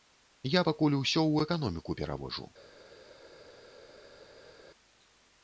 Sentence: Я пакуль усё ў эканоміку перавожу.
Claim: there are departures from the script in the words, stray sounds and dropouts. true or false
false